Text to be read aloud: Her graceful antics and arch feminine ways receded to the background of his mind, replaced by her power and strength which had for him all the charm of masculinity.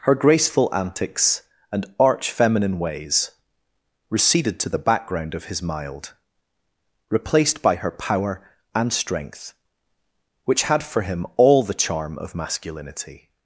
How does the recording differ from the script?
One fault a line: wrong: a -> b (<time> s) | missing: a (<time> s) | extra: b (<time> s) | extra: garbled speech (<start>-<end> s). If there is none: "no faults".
wrong: mind -> mild (5.6 s)